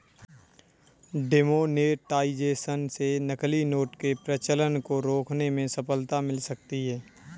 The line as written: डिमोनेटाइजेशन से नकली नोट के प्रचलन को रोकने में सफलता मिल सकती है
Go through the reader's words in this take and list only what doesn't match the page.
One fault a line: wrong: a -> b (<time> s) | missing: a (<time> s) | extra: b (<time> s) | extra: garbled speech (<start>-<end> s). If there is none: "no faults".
no faults